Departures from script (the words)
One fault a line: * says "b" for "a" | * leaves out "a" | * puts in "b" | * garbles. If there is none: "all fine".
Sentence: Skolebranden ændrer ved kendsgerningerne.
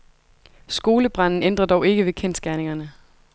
* puts in "dog ikke"